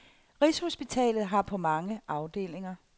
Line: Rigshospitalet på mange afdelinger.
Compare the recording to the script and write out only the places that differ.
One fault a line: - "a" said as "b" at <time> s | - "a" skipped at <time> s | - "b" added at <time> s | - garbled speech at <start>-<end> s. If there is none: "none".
- "har" added at 1.3 s